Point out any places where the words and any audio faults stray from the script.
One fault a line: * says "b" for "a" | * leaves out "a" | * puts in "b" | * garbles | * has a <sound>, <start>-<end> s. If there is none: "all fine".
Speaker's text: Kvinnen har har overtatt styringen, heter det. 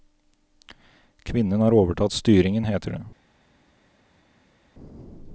* leaves out "har"